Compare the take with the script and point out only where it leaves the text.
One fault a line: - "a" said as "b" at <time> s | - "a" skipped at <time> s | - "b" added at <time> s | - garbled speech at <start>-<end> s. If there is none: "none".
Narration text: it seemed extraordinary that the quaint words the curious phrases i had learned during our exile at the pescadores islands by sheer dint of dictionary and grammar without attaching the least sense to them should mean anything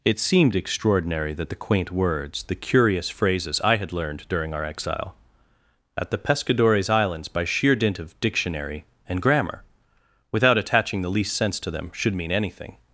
none